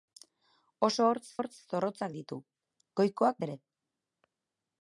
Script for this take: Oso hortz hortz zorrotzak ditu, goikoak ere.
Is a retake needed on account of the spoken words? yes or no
no